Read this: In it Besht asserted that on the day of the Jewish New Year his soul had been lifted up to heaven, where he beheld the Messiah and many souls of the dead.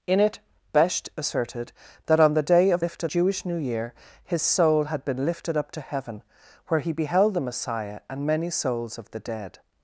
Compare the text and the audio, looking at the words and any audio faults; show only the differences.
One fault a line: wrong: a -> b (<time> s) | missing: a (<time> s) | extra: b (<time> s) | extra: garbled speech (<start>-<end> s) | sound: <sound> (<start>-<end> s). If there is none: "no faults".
wrong: the -> lifted (2.8 s)